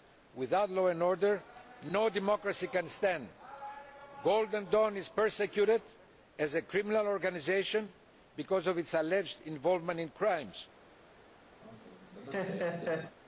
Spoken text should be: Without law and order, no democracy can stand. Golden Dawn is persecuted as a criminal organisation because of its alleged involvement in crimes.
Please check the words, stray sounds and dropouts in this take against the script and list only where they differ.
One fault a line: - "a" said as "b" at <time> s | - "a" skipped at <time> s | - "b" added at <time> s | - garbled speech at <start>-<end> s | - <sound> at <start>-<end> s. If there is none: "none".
- laugh at 11.6-13.2 s